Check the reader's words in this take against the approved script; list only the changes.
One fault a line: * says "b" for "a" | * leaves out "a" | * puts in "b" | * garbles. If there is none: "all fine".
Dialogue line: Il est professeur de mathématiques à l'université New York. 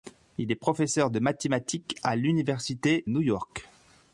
all fine